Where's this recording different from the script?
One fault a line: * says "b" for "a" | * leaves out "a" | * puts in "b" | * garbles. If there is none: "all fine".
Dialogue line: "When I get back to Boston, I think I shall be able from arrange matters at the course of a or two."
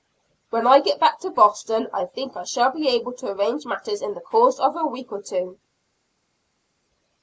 * says "to" for "from"
* says "in" for "at"
* puts in "week"